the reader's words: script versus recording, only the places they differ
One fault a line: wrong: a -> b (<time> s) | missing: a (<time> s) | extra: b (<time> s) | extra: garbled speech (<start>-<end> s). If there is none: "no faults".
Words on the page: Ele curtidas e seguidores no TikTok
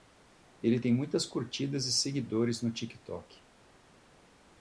extra: tem muitas (0.8 s)